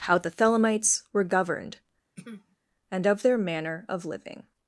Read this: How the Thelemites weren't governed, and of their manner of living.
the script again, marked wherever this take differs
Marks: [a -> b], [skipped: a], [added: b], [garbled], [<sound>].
How the Thelemites [weren't -> were] governed, [throat clearing] and of their manner of living.